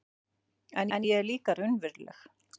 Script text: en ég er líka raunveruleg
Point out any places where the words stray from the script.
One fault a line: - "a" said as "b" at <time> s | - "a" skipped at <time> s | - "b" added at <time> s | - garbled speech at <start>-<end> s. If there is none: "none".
- "en" added at 1.0 s